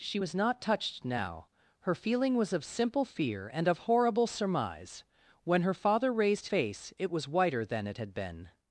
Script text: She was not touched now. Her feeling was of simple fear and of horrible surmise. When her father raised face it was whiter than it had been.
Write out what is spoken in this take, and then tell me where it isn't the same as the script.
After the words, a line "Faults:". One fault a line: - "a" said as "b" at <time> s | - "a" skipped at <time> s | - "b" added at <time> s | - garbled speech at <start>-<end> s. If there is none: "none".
She was not touched now. Her feeling was of simple fear and of horrible surmise. When her father raised face it was whiter than it had been.
Faults:
none